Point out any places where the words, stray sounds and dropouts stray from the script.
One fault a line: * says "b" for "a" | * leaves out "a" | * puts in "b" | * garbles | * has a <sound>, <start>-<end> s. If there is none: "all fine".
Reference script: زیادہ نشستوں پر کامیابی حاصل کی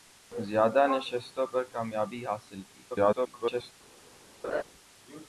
* garbles
* has a laugh, 4.4-4.6 s